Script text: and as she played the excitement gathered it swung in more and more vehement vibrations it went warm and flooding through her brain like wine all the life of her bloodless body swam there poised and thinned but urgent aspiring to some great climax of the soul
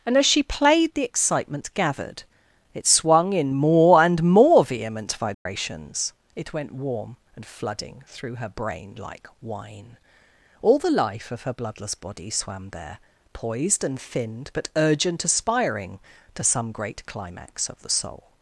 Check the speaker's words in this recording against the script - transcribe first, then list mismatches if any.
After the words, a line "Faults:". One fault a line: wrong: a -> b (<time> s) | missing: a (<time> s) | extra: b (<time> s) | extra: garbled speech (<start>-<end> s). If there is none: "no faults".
and as she played the excitement gathered it swung in more and more vehement vibrations it went warm and flooding through her brain like wine all the life of her bloodless body swam there poised and thinned but urgent aspiring to some great climax of the soul
Faults:
no faults